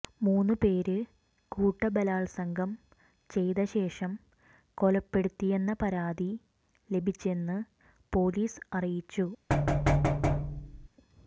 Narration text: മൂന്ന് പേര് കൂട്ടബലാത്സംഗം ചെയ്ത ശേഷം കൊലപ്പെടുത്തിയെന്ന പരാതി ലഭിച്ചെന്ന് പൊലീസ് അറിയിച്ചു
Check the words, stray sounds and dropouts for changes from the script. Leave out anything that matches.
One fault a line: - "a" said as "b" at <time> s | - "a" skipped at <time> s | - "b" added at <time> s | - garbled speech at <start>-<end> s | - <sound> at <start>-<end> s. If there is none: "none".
- thud at 9.5-10.9 s